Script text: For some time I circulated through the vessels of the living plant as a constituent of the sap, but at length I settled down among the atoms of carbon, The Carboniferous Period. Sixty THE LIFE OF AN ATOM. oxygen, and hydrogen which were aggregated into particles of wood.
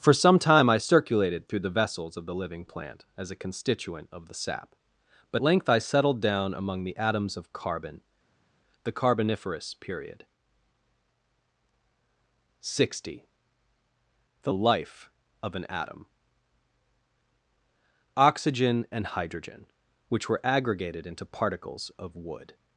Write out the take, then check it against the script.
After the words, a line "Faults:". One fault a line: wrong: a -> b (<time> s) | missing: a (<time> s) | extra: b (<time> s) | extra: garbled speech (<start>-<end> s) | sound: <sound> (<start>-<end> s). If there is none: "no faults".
For some time I circulated through the vessels of the living plant as a constituent of the sap, but length I settled down among the atoms of carbon, The Carboniferous Period. Sixty THE LIFE OF AN ATOM. oxygen, and hydrogen which were aggregated into particles of wood.
Faults:
missing: at (5.4 s)